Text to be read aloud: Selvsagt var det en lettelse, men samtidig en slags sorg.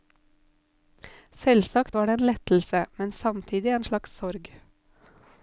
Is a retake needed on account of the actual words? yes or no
no